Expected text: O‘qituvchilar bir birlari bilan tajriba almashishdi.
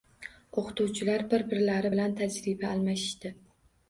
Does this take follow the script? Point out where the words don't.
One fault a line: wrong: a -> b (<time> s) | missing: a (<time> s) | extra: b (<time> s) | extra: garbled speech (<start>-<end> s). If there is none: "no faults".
no faults